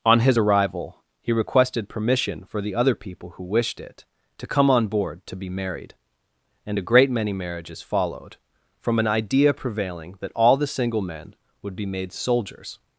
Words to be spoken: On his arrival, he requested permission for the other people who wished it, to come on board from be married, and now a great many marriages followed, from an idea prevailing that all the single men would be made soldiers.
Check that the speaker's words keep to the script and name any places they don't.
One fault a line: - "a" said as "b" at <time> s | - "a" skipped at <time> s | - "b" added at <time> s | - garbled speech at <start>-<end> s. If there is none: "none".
- "from" said as "to" at 5.3 s
- "now" skipped at 6.8 s